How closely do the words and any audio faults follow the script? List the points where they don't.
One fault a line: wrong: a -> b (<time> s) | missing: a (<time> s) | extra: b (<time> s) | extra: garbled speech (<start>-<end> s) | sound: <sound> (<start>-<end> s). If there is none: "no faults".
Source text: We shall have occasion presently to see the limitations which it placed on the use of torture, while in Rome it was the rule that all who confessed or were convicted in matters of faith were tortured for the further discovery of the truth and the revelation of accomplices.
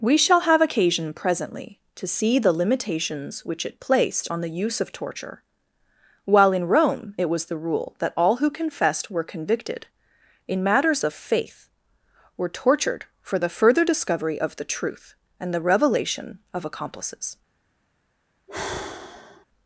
missing: or (9.1 s)
sound: sigh (18.5-19.5 s)